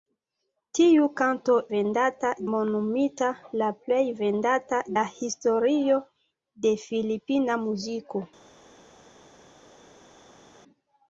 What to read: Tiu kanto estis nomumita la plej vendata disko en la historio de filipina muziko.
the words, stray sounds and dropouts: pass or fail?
fail